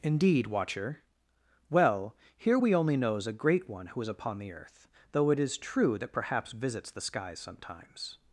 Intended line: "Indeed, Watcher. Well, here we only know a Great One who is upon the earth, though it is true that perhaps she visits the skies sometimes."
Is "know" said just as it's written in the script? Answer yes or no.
no